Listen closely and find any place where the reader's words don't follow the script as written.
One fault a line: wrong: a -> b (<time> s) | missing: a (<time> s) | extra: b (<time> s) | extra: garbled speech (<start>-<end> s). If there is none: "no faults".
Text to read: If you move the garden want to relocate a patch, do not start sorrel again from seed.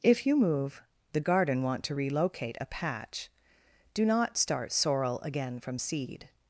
no faults